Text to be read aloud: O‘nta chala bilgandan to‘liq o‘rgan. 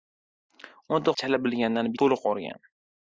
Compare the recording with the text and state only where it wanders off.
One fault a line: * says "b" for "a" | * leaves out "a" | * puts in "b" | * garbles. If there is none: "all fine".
all fine